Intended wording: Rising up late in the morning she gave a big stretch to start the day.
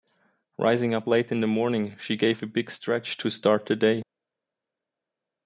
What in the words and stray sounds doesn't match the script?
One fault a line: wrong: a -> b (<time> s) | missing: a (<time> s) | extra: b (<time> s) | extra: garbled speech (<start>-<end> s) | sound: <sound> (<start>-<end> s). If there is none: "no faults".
no faults